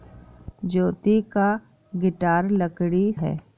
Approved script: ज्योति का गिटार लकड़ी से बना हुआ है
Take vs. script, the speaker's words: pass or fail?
fail